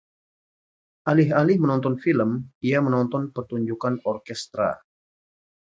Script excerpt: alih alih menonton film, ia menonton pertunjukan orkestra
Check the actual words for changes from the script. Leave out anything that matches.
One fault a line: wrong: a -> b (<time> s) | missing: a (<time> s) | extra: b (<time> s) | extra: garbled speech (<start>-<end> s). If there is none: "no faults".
no faults